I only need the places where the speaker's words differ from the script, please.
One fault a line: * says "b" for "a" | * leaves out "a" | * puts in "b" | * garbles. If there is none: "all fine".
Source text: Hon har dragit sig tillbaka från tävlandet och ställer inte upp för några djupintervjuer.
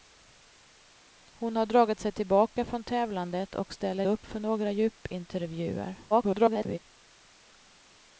* leaves out "inte"
* garbles